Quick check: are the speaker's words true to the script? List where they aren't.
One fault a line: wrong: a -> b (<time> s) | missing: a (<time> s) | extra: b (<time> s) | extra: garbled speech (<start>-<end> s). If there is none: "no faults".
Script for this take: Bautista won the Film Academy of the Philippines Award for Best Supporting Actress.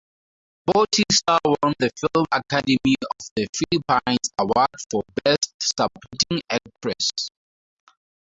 no faults